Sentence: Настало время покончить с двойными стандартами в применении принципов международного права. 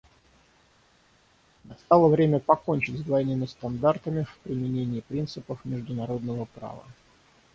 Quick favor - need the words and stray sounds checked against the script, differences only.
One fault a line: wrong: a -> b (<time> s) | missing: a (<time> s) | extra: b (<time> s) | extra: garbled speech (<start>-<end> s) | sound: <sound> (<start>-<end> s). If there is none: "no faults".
no faults